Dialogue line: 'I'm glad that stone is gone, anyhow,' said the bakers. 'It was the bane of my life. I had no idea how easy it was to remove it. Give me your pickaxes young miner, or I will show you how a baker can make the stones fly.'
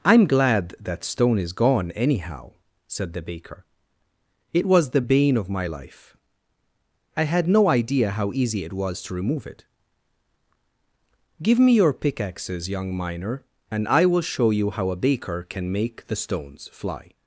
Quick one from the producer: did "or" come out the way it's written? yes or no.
no